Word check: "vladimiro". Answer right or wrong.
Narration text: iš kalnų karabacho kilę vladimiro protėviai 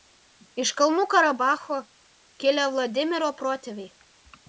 right